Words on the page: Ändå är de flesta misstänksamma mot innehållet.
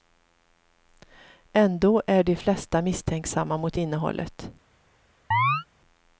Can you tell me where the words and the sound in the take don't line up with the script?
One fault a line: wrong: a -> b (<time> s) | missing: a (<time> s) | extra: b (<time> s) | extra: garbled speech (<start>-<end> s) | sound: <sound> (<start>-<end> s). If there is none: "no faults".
sound: chirp (5.3-5.7 s)